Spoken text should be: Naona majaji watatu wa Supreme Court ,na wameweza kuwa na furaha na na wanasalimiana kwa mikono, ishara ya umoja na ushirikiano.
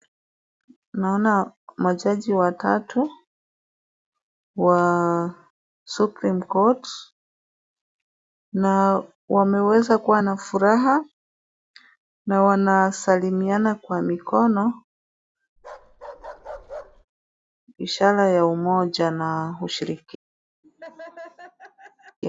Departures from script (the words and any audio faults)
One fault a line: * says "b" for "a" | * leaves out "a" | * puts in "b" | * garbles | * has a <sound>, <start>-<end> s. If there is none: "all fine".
* leaves out "na"
* has a bark, 15.6-17.1 s
* has a laugh, 20.6-22.2 s